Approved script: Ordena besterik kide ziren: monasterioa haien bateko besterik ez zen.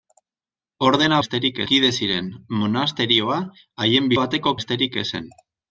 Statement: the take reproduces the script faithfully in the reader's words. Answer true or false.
true